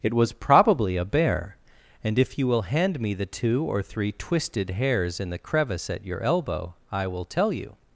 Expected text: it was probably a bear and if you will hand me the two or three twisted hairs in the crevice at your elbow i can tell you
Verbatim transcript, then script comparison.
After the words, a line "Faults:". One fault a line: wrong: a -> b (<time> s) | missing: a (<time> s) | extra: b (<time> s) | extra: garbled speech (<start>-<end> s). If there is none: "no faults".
it was probably a bear and if you will hand me the two or three twisted hairs in the crevice at your elbow i will tell you
Faults:
wrong: can -> will (7.1 s)